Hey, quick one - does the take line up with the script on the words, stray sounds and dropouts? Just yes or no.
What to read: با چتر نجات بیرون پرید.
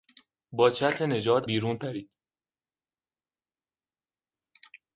yes